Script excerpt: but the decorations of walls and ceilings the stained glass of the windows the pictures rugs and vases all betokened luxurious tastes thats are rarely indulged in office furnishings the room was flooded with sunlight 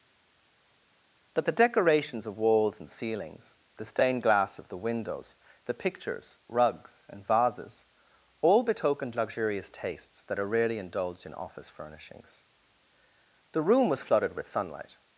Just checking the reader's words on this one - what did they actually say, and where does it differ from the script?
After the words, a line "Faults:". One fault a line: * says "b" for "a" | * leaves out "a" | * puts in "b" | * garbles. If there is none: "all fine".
but the decorations of walls and ceilings the stained glass of the windows the pictures rugs and vases all betokened luxurious tastes that are rarely indulged in office furnishings the room was flooded with sunlight
Faults:
* says "that" for "thats"